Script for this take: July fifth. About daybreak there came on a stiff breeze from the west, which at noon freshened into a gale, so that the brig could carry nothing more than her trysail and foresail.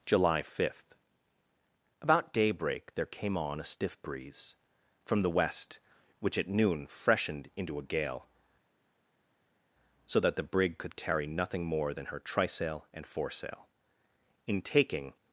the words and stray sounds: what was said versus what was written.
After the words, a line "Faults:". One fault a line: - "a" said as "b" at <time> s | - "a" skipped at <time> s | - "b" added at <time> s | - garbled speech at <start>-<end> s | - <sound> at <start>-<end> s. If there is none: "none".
July fifth. About daybreak there came on a stiff breeze from the west, which at noon freshened into a gale, so that the brig could carry nothing more than her trysail and foresail. In taking
Faults:
- "In taking" added at 14.5 s